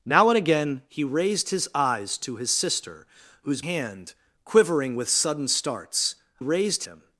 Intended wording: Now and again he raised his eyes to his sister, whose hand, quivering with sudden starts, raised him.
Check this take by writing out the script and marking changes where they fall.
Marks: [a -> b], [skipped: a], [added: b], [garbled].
Now and again he raised his eyes to his sister, whose hand, quivering with sudden starts, raised him.